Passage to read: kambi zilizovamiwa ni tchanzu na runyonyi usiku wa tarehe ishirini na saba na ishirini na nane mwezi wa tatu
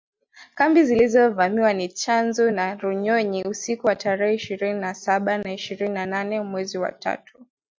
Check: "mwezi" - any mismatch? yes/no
no